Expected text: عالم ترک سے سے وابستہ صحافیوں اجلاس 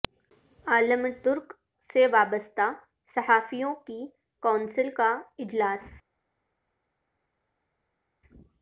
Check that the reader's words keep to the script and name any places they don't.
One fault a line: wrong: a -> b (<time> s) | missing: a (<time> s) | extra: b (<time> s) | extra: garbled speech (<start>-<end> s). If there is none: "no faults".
missing: سے (2.1 s)
extra: کی کونسل کا (3.9 s)